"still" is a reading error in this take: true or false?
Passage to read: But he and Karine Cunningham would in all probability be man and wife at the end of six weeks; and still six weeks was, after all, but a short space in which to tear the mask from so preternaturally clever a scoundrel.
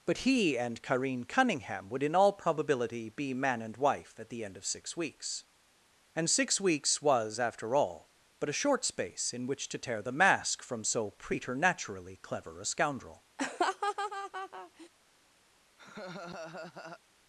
true